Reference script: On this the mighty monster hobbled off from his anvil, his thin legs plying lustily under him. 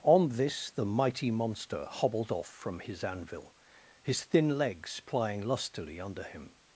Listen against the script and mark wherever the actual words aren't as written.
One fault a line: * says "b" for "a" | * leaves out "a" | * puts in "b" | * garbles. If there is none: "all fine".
all fine